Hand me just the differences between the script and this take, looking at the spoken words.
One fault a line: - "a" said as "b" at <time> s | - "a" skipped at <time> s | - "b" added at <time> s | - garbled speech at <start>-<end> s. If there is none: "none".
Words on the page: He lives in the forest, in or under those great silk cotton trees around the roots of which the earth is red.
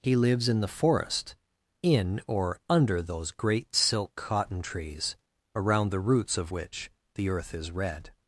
none